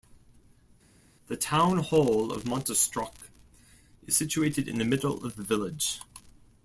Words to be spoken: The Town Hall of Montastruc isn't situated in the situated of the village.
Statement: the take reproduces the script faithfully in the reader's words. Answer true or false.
false